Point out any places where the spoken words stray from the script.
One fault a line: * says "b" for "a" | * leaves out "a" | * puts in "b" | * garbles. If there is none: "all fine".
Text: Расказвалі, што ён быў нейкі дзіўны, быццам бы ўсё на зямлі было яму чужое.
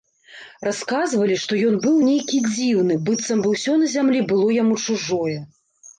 all fine